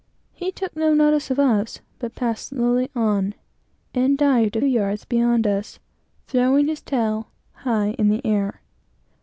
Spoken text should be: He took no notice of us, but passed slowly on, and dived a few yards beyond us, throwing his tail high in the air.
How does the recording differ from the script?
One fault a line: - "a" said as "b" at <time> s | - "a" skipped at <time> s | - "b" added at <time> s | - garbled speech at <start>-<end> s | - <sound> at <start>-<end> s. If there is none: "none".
- "few" skipped at 4.6 s